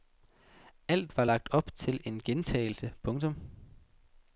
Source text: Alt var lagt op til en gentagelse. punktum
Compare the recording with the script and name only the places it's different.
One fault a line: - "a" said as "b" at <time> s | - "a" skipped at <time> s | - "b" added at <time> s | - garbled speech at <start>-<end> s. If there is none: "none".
none